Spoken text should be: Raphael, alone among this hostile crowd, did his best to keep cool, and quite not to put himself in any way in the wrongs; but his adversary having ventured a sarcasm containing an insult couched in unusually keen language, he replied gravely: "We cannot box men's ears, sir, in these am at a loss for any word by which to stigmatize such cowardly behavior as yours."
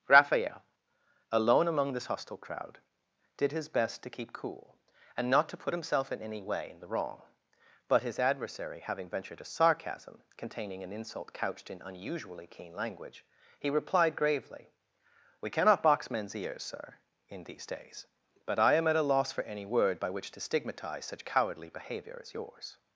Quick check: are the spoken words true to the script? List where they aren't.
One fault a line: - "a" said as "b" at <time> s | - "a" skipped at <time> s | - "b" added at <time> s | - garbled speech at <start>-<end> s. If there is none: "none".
- "quite" skipped at 5.3 s
- "wrongs" said as "wrong" at 6.9 s
- "days but I" added at 17.7 s